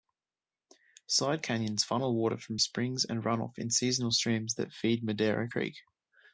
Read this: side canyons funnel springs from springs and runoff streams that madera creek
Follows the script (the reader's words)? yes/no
no